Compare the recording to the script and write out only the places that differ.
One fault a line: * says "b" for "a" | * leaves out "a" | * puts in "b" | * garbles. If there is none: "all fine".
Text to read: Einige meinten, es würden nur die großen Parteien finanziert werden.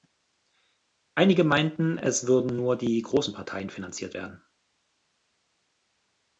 all fine